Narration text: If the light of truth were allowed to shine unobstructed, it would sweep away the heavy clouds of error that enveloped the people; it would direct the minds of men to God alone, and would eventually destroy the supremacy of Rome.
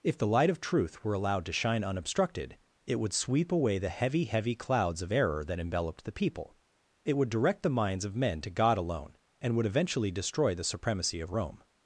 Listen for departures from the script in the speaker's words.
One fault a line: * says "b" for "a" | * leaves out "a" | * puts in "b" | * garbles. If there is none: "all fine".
* puts in "heavy"